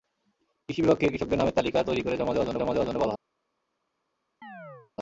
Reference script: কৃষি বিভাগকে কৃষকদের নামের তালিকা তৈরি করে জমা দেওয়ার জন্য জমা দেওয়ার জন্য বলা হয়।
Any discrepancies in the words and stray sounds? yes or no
yes